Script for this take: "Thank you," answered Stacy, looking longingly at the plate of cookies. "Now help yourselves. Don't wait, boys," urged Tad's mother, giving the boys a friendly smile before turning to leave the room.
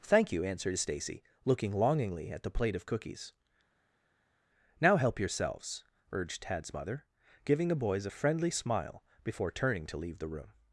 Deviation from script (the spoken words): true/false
true